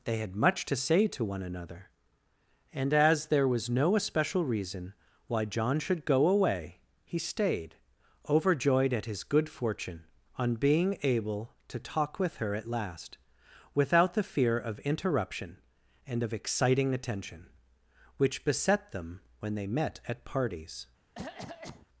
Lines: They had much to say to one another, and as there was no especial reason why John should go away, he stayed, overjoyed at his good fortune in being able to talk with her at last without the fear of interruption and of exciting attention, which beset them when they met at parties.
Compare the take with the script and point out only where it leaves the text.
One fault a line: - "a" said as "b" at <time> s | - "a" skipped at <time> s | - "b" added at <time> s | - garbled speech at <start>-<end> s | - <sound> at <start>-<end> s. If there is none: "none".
- "in" said as "on" at 10.4 s
- cough at 21.2-21.9 s